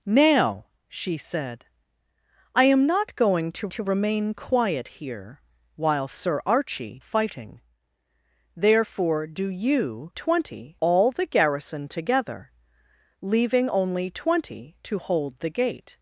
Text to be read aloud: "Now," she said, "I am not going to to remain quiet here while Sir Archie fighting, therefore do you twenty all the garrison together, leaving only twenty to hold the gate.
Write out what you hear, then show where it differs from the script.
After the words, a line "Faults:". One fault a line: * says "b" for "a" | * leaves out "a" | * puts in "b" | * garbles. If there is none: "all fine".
"Now," she said, "I am not going to to remain quiet here while Sir Archie fighting, therefore do you twenty all the garrison together, leaving only twenty to hold the gate.
Faults:
all fine